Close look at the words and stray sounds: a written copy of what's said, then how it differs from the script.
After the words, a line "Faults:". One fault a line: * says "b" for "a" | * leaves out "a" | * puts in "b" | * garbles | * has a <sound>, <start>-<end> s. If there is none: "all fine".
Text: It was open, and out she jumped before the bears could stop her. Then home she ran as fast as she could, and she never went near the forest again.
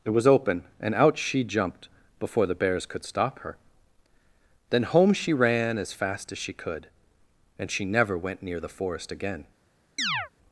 It was open, and out she jumped before the bears could stop her. Then home she ran as fast as she could, and she never went near the forest again.
Faults:
* has a chirp, 10.0-10.3 s